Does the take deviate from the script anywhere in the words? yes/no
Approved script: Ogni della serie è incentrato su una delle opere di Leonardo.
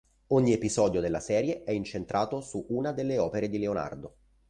yes